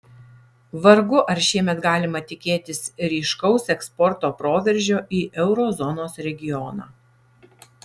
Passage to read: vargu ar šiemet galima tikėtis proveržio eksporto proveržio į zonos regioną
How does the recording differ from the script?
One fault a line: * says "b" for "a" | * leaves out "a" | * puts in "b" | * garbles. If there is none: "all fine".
* says "ryškaus" for "proveržio"
* puts in "euro"